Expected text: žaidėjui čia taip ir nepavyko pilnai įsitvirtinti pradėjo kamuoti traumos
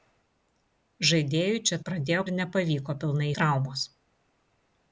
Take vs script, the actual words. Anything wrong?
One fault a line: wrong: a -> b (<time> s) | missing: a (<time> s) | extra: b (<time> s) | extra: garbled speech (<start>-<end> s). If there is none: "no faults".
wrong: taip -> pradėjo (1.9 s)
missing: įsitvirtinti pradėjo kamuoti (3.3 s)